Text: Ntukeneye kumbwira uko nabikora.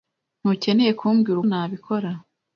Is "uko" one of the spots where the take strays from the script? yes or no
yes